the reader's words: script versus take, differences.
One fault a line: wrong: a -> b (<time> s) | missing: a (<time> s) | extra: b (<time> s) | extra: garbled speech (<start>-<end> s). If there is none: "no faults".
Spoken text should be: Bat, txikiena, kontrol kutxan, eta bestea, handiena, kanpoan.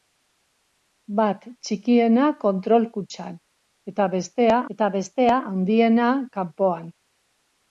extra: eta bestea (4.8 s)